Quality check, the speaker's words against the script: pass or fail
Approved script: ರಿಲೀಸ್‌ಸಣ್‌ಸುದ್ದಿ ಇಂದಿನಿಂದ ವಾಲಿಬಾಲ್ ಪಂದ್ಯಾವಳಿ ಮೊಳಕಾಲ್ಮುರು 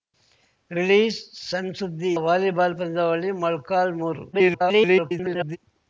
fail